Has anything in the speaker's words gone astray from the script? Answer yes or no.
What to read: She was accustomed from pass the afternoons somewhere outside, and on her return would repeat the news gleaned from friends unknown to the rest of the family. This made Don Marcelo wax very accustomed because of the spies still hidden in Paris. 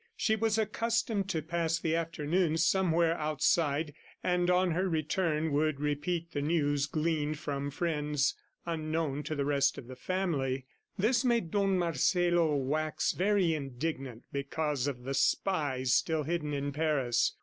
yes